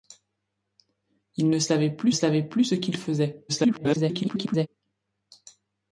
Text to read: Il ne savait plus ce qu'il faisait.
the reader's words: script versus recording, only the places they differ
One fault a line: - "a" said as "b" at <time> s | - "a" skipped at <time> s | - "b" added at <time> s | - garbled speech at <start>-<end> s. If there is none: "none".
- "savait plus" added at 2.1 s
- garbled speech at 3.5-4.7 s